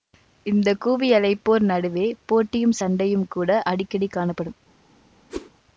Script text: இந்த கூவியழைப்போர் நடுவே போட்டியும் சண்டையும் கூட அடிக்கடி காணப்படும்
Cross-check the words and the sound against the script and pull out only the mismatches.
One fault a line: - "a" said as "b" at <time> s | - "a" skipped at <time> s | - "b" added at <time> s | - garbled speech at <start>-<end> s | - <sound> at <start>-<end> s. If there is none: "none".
- whoosh at 5.3-5.5 s